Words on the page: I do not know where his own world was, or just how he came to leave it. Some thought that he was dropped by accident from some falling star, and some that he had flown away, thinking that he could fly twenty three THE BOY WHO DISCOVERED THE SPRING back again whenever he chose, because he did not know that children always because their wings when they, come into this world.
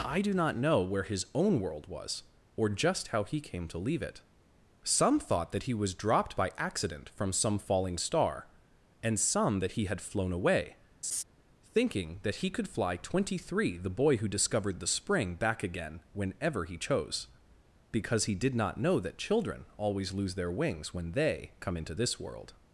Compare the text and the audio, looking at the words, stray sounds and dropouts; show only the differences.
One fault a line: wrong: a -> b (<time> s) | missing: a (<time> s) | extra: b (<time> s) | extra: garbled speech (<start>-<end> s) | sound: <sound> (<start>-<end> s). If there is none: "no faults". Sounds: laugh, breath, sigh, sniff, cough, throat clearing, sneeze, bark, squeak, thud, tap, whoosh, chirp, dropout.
sound: laugh (11.0-11.2 s)
wrong: because -> lose (20.1 s)